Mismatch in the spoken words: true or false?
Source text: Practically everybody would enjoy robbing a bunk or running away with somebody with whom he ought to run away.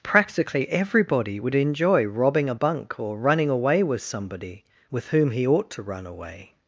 false